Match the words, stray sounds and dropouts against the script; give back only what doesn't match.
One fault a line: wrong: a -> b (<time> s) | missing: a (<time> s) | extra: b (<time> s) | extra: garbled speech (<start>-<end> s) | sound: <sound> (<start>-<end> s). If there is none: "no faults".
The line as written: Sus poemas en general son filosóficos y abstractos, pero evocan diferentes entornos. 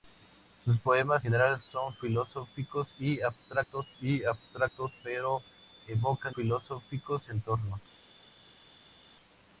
missing: en (1.2 s)
extra: y abstractos (4.0 s)
wrong: diferentes -> filosóficos (6.3 s)